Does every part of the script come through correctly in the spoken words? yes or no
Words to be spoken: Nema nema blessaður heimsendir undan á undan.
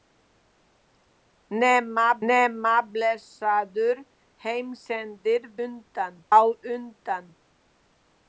yes